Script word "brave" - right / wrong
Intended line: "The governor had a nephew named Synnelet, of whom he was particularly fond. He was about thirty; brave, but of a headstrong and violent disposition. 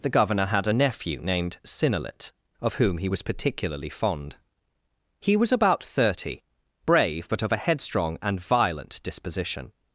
right